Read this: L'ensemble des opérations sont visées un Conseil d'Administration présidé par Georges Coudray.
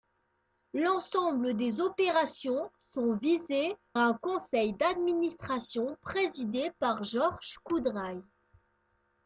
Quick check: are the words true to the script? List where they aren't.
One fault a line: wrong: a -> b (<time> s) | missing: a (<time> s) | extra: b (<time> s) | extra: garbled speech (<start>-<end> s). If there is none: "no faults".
no faults